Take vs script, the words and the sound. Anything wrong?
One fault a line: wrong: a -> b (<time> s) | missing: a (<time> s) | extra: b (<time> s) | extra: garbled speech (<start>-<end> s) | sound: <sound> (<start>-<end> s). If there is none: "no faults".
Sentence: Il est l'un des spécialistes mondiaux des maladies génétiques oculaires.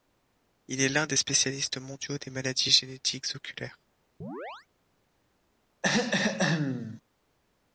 sound: chirp (4.2-4.7 s)
sound: throat clearing (5.8-7.0 s)